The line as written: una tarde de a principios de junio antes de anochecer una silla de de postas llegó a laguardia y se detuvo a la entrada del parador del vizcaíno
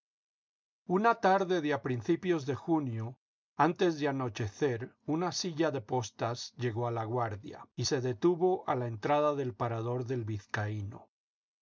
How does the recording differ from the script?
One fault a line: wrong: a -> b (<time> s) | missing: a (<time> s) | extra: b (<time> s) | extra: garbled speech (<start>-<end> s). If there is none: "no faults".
missing: de (5.8 s)